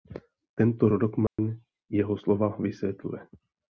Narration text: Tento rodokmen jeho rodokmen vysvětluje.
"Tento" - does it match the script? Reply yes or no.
yes